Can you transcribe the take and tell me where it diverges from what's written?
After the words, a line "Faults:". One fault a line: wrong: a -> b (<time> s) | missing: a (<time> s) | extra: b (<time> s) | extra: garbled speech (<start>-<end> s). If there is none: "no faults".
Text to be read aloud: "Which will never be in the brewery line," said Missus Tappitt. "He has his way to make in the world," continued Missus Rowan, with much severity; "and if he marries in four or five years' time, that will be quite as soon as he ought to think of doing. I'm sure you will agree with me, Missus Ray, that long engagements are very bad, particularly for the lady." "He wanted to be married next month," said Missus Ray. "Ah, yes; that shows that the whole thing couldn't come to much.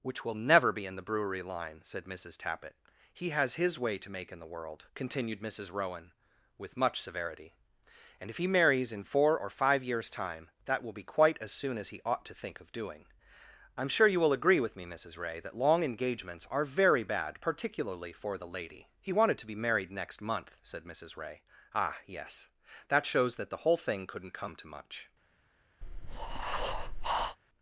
"Which will never be in the brewery line," said Missus Tappitt. "He has his way to make in the world," continued Missus Rowan, with much severity; "and if he marries in four or five years' time, that will be quite as soon as he ought to think of doing. I'm sure you will agree with me, Missus Ray, that long engagements are very bad, particularly for the lady." "He wanted to be married next month," said Missus Ray. "Ah, yes; that shows that the whole thing couldn't come to much.
Faults:
no faults